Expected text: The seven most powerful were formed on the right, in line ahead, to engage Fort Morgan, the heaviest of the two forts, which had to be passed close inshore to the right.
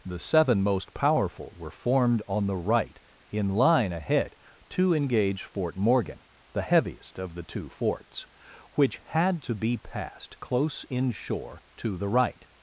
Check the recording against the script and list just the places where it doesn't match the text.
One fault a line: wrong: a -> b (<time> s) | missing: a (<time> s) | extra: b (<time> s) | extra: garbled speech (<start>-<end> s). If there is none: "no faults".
no faults